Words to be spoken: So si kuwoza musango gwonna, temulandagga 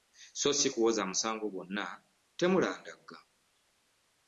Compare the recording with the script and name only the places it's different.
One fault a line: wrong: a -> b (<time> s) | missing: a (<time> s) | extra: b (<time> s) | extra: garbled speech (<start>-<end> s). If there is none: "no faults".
no faults